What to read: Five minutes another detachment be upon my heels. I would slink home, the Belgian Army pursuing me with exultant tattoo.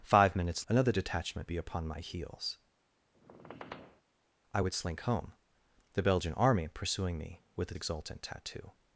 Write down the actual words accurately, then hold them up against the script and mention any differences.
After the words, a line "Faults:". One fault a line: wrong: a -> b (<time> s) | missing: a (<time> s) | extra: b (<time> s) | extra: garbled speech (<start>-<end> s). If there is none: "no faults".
Five minutes another detachment be upon my heels. I would slink home, the Belgian Army pursuing me with exultant tattoo.
Faults:
no faults